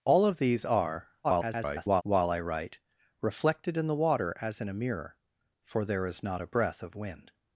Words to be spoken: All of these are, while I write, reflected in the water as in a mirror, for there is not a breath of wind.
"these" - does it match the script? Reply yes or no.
yes